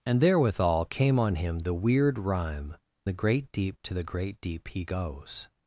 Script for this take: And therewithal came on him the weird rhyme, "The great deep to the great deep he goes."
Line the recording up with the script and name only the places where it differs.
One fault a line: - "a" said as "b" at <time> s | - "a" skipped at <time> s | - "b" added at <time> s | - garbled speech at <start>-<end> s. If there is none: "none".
none